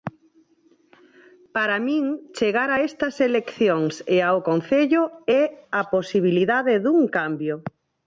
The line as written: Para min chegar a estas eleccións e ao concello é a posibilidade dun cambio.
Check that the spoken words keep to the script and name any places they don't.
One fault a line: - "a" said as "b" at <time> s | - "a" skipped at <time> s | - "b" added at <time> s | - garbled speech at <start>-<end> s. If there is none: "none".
none